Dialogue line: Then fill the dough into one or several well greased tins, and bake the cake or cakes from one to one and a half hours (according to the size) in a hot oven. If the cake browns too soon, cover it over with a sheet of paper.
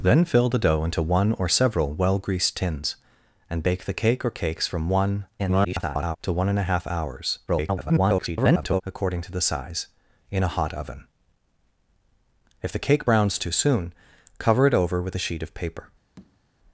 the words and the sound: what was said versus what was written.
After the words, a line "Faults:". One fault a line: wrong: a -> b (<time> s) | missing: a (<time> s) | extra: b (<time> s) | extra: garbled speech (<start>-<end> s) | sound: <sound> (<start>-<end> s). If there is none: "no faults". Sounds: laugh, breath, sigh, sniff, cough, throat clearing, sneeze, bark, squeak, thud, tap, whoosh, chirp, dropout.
Then fill the dough into one or several well greased tins, and bake the cake or cakes from one [garbled] to one and a half hours [garbled] (according to the size) in a hot oven. If the cake browns too soon, cover it over with a sheet of paper.
Faults:
extra: garbled speech (5.4-6.2 s)
extra: garbled speech (7.5-8.8 s)
sound: tap (16.2-16.4 s)